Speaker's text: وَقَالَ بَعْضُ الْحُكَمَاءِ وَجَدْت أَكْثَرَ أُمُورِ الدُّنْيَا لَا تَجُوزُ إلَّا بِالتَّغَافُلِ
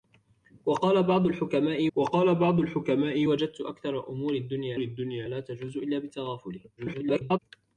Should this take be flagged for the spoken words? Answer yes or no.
yes